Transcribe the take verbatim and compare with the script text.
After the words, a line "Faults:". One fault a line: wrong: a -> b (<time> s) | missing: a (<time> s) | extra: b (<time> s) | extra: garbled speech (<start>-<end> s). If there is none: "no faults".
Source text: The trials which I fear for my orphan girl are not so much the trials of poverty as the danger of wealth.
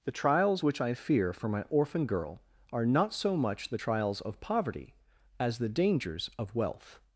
The trials which I fear for my orphan girl are not so much the trials of poverty as the dangers of wealth.
Faults:
wrong: danger -> dangers (5.7 s)